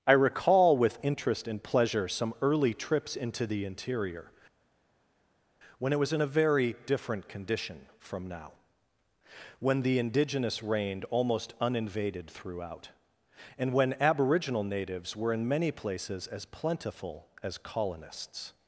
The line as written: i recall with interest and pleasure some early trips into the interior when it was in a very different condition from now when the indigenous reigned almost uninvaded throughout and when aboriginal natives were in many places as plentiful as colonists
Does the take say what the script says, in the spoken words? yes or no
yes